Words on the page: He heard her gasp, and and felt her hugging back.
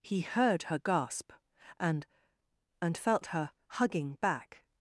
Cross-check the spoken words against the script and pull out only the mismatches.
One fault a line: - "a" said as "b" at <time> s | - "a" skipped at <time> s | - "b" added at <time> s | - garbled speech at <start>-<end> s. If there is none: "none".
none